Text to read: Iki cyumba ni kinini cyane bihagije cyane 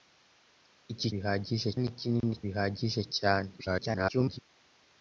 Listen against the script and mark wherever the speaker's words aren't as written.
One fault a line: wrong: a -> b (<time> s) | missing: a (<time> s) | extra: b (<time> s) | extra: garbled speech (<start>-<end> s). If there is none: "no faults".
wrong: cyumba -> bihagije (1.1 s)
missing: cyane (2.3 s)
extra: garbled speech (3.6-4.4 s)